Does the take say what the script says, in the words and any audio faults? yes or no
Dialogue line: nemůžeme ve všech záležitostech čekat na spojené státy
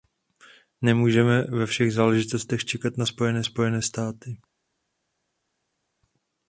no